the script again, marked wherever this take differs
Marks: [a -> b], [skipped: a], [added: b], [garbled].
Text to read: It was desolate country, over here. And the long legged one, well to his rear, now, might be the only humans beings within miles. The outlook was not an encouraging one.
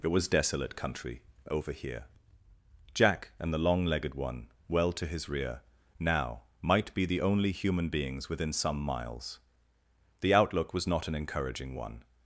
It was desolate country, over here. [added: Jack] And the long legged one, well to his rear, now, might be the only [humans -> human] beings within [added: some] miles. The outlook was not an encouraging one.